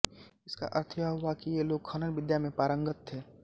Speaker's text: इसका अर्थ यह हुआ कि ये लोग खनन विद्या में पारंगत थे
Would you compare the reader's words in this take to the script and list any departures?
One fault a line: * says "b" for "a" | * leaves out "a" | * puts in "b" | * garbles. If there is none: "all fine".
all fine